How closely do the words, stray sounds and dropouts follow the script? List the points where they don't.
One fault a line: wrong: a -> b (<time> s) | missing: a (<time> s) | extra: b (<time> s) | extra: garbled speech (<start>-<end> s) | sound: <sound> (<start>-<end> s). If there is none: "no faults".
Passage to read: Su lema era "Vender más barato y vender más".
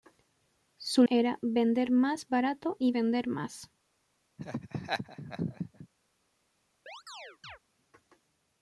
missing: lema (1.0 s)
sound: laugh (4.4-5.9 s)
sound: chirp (6.9-7.6 s)